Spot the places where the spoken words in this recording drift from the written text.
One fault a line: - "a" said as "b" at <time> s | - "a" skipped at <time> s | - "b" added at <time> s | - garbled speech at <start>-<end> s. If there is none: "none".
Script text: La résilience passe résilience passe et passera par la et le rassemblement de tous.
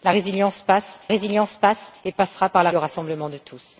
none